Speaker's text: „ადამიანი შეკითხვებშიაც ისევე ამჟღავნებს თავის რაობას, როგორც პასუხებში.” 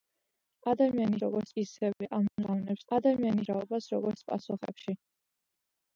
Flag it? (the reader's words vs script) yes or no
yes